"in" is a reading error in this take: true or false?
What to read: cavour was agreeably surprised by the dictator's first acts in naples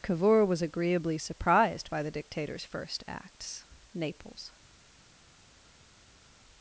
true